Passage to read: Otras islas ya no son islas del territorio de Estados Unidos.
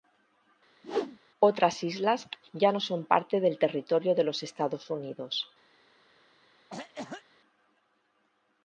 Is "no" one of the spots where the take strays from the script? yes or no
no